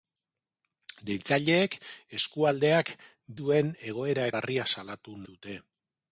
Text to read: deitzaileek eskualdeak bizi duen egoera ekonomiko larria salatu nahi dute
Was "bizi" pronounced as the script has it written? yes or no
no